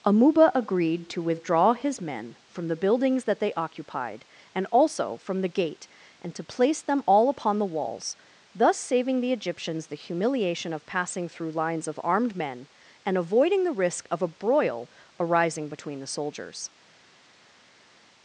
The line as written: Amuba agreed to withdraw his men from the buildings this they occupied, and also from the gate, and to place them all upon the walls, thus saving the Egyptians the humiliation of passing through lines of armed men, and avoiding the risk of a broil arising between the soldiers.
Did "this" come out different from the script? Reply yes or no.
yes